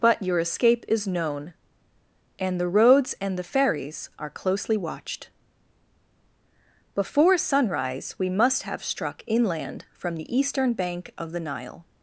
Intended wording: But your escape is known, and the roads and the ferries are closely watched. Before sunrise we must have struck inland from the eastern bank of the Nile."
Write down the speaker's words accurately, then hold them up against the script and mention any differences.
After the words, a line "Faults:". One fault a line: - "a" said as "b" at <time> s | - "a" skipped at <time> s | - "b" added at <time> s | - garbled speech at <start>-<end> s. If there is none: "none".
But your escape is known, and the roads and the ferries are closely watched. Before sunrise we must have struck inland from the eastern bank of the Nile."
Faults:
none